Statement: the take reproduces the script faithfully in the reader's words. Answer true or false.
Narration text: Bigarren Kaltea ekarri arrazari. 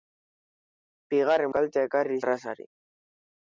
true